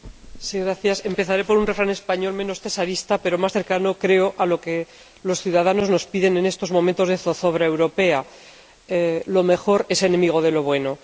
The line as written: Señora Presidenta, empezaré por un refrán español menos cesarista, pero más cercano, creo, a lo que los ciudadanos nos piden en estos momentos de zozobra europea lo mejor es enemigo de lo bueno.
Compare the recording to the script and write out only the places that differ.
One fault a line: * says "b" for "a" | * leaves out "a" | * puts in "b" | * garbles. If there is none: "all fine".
all fine